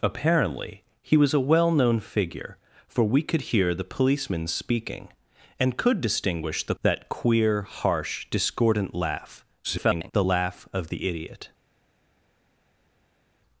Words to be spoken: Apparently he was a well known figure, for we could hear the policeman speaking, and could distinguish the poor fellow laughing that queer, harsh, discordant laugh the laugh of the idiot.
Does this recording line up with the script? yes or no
no